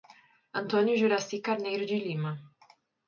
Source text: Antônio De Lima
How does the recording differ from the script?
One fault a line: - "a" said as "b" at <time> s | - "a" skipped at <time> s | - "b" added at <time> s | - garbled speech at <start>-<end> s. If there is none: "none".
- "Juraci Carneiro" added at 1.0 s